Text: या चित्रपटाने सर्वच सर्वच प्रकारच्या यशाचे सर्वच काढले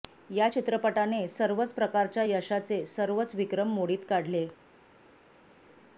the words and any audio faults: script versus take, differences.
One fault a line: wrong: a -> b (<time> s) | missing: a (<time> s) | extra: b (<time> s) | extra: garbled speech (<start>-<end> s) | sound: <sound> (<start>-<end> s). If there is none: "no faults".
missing: सर्वच (1.7 s)
extra: विक्रम मोडीत (3.3 s)